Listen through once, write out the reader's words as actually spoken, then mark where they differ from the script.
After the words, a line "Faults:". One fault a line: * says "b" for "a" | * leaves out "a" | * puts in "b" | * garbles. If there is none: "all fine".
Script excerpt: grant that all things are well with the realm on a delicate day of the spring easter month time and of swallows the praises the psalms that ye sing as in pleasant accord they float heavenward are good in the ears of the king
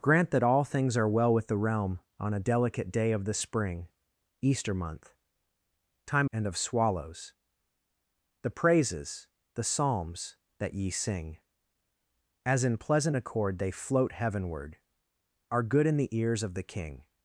grant that all things are well with the realm on a delicate day of the spring easter month time and of swallows the praises the psalms that ye sing as in pleasant accord they float heavenward are good in the ears of the king
Faults:
all fine